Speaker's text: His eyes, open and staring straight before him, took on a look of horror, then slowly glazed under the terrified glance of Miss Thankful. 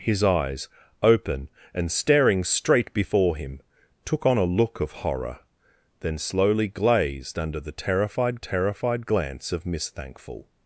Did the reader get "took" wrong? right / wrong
right